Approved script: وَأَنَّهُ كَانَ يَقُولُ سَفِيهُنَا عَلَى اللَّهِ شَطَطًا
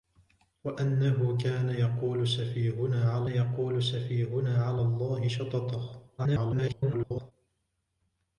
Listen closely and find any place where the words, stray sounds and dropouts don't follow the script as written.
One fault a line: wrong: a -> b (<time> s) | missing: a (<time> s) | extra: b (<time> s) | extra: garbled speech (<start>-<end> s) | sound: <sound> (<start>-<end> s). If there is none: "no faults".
extra: يَقُولُ سَفِيهُنَا عَلَى (3.3 s)
extra: garbled speech (6.2-7.3 s)